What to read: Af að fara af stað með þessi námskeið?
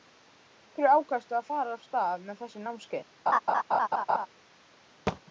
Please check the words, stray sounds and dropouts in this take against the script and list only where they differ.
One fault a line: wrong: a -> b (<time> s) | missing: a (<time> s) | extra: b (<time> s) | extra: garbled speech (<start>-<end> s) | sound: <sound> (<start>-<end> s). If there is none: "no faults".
extra: hverju ákvaðstu (0.8 s)
sound: laugh (3.3-4.3 s)
sound: thud (5.1-5.2 s)